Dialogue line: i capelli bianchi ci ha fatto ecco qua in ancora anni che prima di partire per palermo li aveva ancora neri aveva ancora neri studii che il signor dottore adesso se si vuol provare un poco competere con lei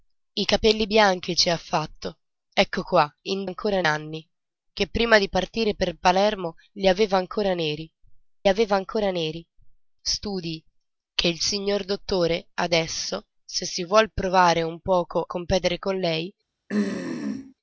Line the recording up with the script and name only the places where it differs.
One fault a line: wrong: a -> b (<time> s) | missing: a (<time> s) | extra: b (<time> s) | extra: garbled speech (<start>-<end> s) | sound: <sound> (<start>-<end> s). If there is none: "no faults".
sound: throat clearing (16.7-17.5 s)